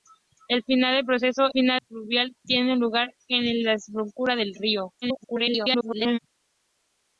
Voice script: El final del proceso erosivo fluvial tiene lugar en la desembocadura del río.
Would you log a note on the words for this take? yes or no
yes